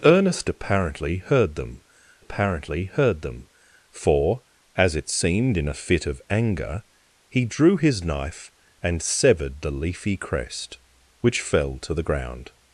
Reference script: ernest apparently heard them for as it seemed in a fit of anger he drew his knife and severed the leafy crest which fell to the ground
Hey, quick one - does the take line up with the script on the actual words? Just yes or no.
no